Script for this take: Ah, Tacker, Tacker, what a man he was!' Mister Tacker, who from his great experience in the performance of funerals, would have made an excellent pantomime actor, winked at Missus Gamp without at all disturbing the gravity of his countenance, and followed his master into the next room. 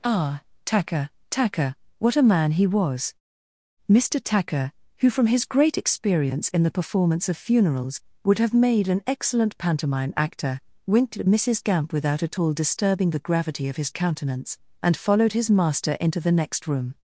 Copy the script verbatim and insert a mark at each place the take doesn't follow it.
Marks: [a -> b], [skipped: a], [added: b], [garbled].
Ah, Tacker, Tacker, what a man he was!' Mister Tacker, who from his great experience in the performance of funerals, would have made an excellent pantomime actor, winked at Missus Gamp without at all disturbing the gravity of his countenance, and followed his master into the next room.